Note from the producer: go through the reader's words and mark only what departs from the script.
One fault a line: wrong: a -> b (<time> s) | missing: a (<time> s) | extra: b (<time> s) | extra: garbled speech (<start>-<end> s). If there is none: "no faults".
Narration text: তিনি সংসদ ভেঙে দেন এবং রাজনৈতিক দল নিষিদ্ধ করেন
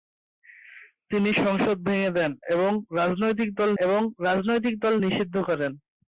extra: এবং রাজনৈতিক দল (3.8 s)